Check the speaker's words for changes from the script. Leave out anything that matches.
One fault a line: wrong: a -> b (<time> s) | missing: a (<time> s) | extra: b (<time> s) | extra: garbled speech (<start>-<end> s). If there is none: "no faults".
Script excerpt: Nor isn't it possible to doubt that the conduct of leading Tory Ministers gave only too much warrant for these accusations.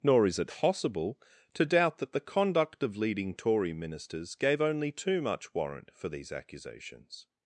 wrong: isn't -> is (0.2 s)